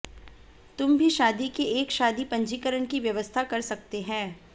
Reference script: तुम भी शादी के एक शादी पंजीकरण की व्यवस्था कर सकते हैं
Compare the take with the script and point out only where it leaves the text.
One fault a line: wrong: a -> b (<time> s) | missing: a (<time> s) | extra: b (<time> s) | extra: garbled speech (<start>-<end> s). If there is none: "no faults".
no faults